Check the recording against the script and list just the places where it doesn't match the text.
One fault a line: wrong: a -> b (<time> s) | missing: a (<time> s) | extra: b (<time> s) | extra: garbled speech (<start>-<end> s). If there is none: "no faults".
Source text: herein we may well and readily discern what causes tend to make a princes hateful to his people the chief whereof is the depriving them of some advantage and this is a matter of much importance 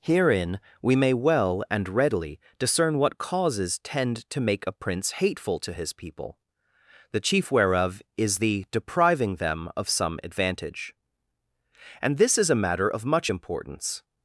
wrong: princes -> prince (4.7 s)